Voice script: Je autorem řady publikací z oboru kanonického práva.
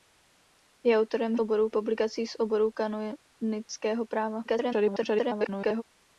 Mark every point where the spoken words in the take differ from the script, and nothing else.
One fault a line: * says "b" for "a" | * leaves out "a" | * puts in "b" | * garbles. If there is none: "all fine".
* says "oboru" for "řady"
* garbles